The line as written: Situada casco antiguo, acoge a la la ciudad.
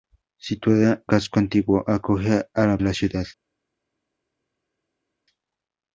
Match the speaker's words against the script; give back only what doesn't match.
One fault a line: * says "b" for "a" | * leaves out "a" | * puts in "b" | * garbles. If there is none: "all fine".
all fine